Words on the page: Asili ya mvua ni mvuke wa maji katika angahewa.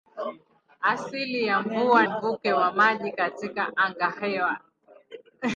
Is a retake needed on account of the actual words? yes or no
yes